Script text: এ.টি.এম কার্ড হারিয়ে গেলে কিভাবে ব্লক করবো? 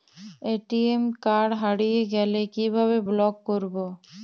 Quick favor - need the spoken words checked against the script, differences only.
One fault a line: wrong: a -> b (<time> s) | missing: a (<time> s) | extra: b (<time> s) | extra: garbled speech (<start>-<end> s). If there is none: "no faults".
no faults